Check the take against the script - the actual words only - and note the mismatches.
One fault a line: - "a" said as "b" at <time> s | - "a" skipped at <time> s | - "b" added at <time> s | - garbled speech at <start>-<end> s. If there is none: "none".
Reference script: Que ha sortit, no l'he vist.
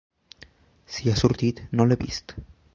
- "Que" said as "Si" at 0.9 s